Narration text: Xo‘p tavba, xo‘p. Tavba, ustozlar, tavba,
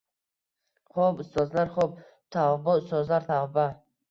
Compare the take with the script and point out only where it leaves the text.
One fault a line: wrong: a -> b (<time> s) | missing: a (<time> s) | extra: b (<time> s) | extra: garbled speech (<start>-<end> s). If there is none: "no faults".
wrong: tavba -> ustozlar (1.2 s)